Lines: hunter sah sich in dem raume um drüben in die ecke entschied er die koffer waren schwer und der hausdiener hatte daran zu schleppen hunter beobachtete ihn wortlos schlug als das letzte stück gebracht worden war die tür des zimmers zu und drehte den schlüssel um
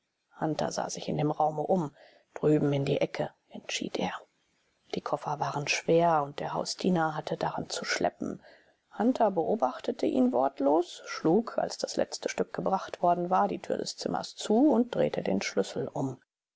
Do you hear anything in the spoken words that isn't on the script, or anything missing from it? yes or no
no